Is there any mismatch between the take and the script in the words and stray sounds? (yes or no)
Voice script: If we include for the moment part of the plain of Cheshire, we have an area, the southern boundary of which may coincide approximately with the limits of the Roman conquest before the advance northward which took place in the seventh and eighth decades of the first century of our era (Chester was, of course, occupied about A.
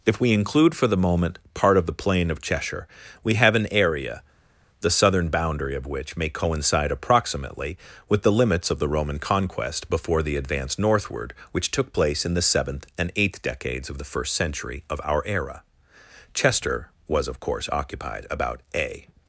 no